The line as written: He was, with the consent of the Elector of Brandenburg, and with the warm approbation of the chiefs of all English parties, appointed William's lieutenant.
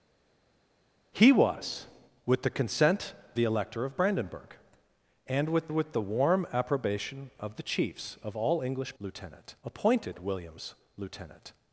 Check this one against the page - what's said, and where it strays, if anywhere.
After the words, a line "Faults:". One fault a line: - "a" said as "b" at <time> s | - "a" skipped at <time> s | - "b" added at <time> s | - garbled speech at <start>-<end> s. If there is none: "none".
He was, with the consent the Elector of Brandenburg, and with with the warm approbation of the chiefs of all English lieutenant, appointed William's lieutenant.
Faults:
- "of" skipped at 3.1 s
- "with" added at 5.7 s
- "parties" said as "lieutenant" at 9.0 s